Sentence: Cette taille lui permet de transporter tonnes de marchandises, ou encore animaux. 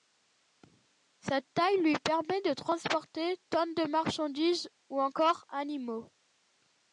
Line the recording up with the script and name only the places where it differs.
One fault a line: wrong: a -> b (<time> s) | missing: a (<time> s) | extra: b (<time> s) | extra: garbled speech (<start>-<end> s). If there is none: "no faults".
no faults